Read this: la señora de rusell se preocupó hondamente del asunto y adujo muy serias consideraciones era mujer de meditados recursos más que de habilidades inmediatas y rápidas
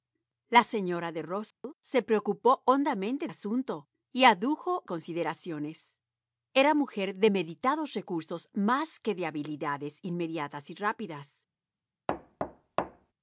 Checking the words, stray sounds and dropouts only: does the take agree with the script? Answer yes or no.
no